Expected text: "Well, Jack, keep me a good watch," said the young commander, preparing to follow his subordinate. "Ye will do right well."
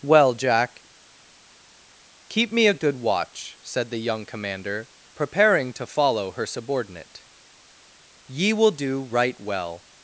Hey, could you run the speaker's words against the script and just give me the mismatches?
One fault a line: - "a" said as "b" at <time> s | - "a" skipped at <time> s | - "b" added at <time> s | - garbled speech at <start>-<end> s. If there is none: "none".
- "his" said as "her" at 6.3 s